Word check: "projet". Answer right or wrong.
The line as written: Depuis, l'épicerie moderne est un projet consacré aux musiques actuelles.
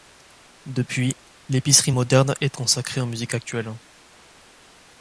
wrong